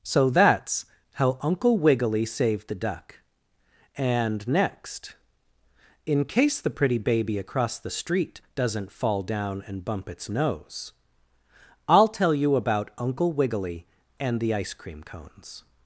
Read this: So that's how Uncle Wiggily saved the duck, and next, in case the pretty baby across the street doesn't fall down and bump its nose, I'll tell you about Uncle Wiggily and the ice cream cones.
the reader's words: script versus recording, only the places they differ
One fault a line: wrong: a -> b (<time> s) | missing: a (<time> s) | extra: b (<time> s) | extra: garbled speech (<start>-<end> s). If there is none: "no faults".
no faults